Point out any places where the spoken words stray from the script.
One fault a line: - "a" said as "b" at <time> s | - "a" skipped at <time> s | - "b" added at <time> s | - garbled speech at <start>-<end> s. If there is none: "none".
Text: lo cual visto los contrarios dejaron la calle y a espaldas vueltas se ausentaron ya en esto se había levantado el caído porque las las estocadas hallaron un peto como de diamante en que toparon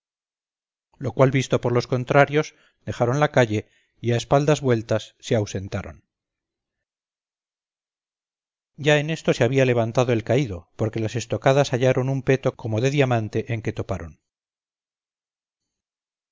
- "por" added at 1.6 s
- "las" skipped at 11.2 s